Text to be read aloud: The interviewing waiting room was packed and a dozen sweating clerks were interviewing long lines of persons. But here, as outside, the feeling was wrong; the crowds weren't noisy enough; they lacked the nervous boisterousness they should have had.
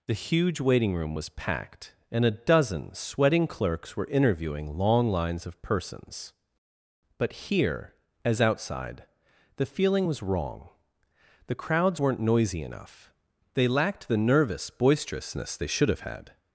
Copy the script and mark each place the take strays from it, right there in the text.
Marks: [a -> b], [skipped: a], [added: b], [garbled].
The [interviewing -> huge] waiting room was packed and a dozen sweating clerks were interviewing long lines of persons. But here, as outside, the feeling was wrong; the crowds weren't noisy enough; they lacked the nervous boisterousness they should have had.